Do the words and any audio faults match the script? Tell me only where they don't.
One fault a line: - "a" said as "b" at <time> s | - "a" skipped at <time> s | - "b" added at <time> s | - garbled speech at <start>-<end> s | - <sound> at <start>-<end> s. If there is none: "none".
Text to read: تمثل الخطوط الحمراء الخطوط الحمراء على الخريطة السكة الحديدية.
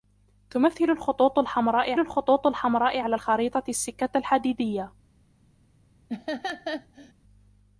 - laugh at 6.1-7.1 s